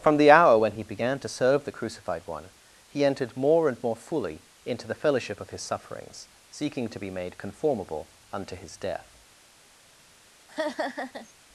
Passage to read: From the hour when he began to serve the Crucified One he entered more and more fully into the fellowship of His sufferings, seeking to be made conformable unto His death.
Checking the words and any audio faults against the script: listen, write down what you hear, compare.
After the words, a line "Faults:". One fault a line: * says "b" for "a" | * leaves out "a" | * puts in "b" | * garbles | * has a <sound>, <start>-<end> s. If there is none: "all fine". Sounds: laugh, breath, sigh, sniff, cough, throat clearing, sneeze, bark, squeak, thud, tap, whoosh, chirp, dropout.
From the hour when he began to serve the Crucified One he entered more and more fully into the fellowship of His sufferings, seeking to be made conformable unto His death.
Faults:
* has a laugh, 10.5-11.3 s